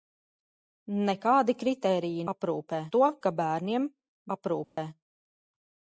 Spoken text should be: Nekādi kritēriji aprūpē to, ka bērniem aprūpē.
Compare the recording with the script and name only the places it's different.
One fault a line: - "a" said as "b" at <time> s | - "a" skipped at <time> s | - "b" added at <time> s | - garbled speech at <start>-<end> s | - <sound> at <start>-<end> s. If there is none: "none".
- dropout at 4.6-4.8 s